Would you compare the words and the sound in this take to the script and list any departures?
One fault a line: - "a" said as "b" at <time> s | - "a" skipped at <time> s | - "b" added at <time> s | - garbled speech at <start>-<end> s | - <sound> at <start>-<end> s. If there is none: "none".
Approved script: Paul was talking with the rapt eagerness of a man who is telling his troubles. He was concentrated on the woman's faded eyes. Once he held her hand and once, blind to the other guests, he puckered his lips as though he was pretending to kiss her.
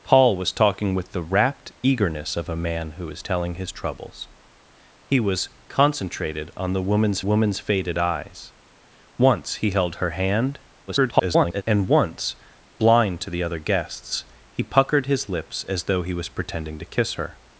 - "woman's" added at 7.2 s
- garbled speech at 10.9-11.6 s